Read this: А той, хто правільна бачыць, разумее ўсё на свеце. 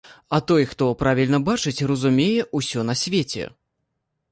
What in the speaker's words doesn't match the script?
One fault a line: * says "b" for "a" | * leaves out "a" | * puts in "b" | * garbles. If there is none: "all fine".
all fine